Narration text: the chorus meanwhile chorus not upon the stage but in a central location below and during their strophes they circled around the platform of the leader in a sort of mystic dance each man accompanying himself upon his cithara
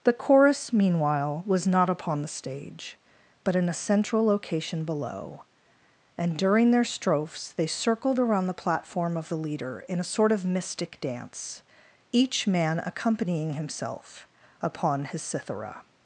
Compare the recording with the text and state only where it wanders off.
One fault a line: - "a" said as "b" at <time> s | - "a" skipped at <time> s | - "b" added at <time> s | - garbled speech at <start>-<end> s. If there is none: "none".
- "chorus" said as "was" at 1.4 s